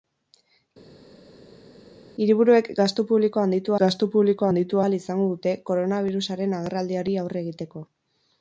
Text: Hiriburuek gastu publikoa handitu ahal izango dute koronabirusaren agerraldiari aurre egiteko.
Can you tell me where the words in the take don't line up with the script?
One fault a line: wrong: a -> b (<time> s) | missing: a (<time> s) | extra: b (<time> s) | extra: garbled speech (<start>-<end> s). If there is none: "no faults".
extra: gastu publikoa handitu (3.8 s)